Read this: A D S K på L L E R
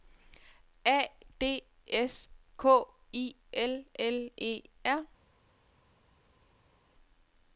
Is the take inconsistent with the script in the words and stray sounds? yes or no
yes